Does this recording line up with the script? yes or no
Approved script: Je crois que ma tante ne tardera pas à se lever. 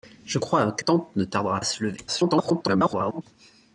no